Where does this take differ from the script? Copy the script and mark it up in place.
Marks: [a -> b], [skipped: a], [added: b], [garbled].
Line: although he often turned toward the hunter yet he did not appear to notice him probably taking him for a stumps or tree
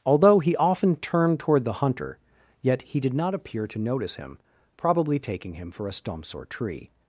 although he often turned toward the hunter yet he did not appear to notice him probably taking him for a stumps or tree